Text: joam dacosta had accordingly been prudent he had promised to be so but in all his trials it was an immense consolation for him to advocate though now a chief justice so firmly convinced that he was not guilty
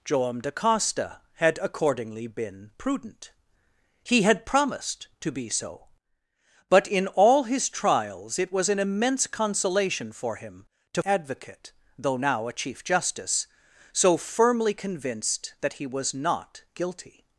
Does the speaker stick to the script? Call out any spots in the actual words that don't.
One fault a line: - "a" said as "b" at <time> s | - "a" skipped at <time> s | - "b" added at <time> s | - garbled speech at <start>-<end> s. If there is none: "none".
none